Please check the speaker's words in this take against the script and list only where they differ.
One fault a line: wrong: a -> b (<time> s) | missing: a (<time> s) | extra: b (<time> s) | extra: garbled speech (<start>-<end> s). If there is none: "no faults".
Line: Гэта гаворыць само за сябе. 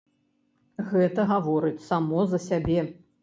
no faults